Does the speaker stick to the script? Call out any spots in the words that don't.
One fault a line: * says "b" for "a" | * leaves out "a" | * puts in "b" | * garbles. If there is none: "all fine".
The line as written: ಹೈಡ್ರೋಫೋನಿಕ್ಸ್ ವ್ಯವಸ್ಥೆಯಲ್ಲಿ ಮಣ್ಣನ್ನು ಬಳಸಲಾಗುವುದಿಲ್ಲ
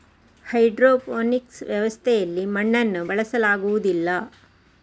all fine